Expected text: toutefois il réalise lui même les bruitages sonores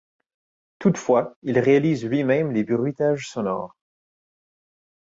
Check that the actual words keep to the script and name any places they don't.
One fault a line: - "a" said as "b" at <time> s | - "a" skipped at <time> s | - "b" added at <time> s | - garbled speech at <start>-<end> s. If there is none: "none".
none